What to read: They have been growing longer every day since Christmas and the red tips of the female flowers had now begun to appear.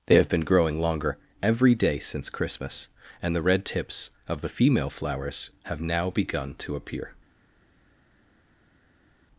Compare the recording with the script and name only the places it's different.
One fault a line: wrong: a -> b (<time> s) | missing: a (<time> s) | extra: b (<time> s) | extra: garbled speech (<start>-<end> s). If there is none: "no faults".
wrong: had -> have (5.6 s)